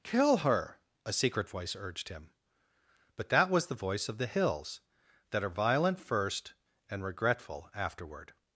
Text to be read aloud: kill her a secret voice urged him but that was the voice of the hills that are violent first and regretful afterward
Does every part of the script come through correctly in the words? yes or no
yes